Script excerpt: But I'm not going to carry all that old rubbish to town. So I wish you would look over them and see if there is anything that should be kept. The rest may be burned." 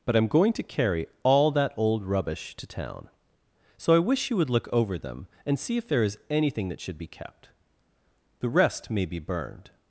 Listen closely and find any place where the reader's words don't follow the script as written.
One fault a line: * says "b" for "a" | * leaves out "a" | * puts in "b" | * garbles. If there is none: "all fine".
* leaves out "not"